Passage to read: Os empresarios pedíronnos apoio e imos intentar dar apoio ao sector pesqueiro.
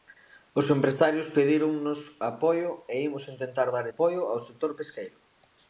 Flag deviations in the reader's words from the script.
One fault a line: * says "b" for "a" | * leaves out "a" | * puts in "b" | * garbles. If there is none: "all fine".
all fine